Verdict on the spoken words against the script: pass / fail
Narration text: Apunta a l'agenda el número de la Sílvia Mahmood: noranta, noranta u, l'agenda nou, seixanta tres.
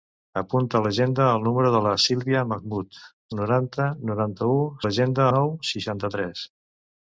pass